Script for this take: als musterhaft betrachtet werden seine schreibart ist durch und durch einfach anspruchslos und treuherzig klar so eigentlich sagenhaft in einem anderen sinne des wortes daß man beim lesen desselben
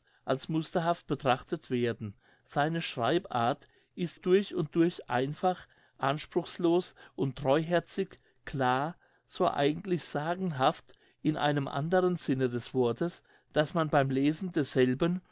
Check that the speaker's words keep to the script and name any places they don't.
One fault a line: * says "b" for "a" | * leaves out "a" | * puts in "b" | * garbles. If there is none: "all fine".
all fine